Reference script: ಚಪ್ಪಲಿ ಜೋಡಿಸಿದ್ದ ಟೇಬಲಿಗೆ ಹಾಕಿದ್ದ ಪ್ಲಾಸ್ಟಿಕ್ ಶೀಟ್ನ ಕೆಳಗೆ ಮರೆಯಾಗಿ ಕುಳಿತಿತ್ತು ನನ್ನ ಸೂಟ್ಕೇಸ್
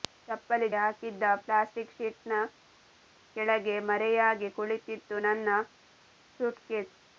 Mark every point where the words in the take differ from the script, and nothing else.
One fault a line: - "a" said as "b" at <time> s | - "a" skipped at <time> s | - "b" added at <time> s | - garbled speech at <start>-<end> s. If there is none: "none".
- "ಜೋಡಿಸಿದ್ದ ಟೇಬಲಿಗೆ" skipped at 0.7 s